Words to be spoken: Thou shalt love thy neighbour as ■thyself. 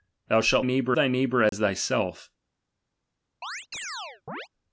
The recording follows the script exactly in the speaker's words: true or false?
false